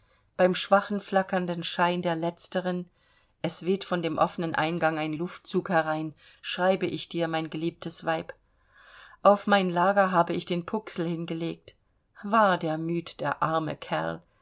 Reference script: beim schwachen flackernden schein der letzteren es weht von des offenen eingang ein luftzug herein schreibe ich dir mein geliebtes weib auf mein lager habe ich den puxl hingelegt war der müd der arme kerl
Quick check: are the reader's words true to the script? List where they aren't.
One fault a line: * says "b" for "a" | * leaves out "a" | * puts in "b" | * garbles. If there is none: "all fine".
* says "dem" for "des"